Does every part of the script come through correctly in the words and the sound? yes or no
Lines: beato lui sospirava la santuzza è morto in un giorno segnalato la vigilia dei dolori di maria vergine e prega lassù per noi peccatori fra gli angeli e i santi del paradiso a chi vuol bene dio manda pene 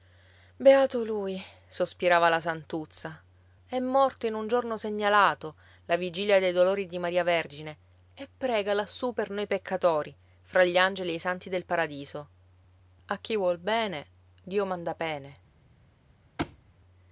no